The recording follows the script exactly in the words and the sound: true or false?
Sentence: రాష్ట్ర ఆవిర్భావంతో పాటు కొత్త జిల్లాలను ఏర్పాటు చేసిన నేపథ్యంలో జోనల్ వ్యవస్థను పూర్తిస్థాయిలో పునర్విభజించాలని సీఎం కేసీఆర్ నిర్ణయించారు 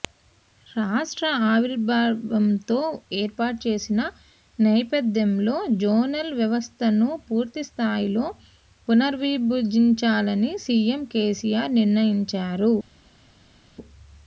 false